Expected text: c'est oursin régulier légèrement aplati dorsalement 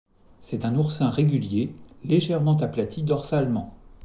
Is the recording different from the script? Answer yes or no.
yes